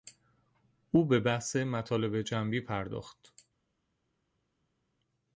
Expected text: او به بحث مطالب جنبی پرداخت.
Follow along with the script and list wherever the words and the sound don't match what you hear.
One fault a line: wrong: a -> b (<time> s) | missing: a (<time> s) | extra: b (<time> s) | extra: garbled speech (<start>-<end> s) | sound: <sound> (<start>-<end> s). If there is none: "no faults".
no faults